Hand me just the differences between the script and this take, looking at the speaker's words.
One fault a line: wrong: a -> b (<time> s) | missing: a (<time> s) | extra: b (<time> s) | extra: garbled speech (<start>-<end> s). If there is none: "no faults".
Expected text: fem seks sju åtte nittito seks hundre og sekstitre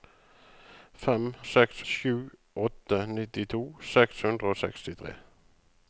no faults